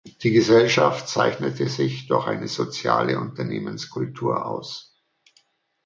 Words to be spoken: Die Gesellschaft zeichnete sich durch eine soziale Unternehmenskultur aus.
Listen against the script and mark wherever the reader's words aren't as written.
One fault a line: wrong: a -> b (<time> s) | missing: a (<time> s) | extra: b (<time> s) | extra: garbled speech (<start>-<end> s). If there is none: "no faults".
no faults